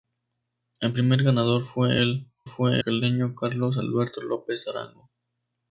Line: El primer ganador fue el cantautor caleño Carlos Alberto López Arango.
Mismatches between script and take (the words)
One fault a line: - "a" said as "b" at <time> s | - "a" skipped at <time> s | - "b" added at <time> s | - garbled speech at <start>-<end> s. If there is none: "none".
- "cantautor" said as "fue" at 2.4 s